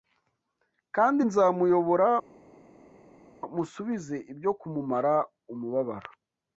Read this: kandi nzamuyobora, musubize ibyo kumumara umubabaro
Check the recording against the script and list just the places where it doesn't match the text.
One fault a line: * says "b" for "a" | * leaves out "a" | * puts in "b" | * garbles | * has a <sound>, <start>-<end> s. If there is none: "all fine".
all fine